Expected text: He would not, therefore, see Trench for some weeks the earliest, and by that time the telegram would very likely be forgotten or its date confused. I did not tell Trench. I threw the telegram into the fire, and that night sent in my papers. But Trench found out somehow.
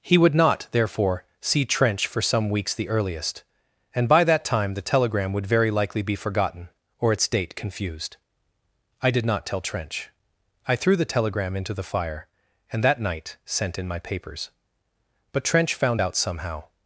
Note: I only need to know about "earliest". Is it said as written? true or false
true